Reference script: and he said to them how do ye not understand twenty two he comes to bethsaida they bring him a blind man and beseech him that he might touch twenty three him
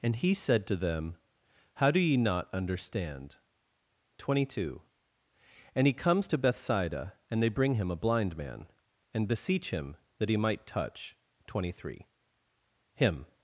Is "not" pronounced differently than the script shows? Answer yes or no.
no